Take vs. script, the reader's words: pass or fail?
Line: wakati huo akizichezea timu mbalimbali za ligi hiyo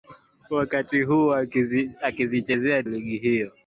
fail